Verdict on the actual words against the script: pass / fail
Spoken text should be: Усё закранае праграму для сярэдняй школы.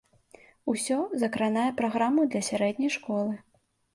pass